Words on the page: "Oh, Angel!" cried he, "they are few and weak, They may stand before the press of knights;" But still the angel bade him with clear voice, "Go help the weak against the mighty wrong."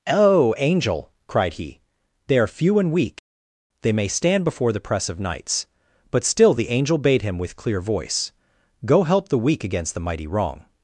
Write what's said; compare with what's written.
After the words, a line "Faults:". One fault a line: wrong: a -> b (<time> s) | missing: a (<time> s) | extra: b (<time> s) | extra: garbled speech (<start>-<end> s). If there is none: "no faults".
"Oh, Angel!" cried he, "they are few and weak, They may stand before the press of knights;" But still the angel bade him with clear voice, "Go help the weak against the mighty wrong."
Faults:
no faults